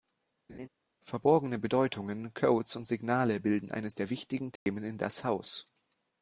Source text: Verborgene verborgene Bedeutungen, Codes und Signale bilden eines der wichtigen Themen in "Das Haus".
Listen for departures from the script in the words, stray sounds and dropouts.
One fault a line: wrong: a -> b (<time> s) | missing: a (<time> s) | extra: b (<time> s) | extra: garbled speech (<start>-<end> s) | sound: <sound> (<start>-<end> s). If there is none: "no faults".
sound: laugh (0.5-0.7 s)
missing: verborgene (1.6 s)
sound: dropout (4.6-4.7 s)